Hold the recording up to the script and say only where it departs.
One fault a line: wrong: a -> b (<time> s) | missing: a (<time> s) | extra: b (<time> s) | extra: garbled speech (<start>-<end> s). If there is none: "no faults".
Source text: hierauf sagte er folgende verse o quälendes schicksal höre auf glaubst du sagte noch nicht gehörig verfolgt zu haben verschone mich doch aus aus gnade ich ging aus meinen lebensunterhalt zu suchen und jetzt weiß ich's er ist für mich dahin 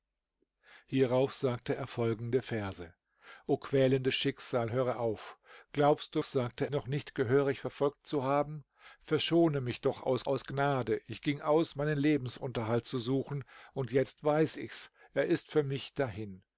no faults